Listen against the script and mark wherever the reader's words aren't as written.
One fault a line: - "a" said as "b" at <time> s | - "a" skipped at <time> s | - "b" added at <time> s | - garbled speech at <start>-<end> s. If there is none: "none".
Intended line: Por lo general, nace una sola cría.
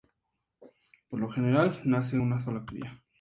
none